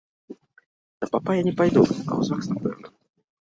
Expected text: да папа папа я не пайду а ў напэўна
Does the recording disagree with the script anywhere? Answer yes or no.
yes